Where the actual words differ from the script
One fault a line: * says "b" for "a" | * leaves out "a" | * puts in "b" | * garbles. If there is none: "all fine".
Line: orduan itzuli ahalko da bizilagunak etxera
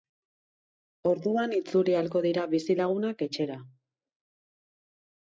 * says "dira" for "da"